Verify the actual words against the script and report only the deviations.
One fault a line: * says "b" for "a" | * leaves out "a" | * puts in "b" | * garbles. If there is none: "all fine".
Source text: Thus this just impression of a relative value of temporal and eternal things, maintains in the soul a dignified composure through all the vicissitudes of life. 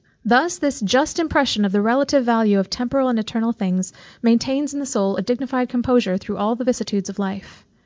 * says "the" for "a"